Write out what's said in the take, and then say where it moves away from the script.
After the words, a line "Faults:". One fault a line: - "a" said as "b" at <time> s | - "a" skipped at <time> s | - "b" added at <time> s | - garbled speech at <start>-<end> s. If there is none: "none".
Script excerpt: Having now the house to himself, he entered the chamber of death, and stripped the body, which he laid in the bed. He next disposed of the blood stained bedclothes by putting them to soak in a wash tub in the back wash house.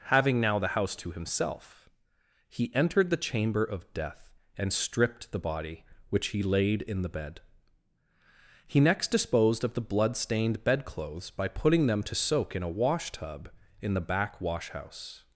Having now the house to himself, he entered the chamber of death, and stripped the body, which he laid in the bed. He next disposed of the blood stained bedclothes by putting them to soak in a wash tub in the back wash house.
Faults:
none